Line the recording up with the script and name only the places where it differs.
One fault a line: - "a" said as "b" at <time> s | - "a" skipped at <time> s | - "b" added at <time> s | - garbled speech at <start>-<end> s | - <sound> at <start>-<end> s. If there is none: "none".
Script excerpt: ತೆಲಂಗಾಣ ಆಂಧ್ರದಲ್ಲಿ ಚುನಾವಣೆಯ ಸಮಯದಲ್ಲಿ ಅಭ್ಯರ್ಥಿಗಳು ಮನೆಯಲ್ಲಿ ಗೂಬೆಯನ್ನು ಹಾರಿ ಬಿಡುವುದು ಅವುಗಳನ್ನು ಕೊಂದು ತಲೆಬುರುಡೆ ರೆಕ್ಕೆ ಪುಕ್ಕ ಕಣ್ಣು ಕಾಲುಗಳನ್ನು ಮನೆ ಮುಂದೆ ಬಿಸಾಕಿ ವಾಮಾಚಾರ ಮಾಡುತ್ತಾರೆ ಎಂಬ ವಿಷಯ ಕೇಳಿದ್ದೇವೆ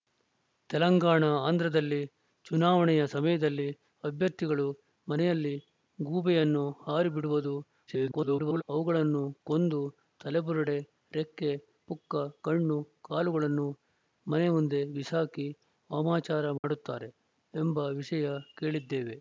- garbled speech at 7.9-8.6 s
- dropout at 16.6-16.6 s